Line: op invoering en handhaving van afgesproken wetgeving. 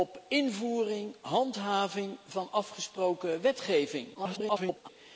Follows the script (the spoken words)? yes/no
no